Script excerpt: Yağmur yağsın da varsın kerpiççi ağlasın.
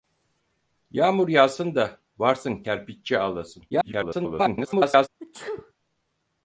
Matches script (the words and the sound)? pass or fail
fail